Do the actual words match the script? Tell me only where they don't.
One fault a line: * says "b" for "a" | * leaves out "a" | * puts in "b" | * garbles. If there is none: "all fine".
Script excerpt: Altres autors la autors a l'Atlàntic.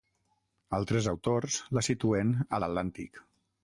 * says "situen" for "autors"